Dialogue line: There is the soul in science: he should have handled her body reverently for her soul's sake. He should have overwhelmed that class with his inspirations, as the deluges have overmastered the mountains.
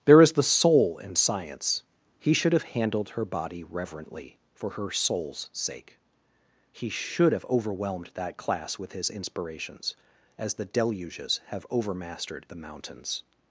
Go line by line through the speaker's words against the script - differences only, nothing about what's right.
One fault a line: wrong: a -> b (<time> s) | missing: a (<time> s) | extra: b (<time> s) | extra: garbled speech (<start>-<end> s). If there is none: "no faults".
no faults